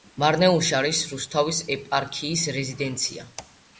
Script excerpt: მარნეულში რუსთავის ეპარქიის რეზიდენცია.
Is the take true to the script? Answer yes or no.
no